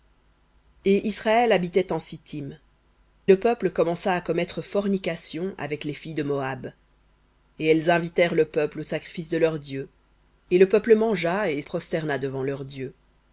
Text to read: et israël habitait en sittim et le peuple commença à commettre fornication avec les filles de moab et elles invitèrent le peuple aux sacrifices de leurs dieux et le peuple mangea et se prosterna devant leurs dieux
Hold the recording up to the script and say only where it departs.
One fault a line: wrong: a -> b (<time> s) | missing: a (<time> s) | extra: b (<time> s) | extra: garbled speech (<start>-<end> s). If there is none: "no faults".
missing: et (2.6 s)
missing: se (11.6 s)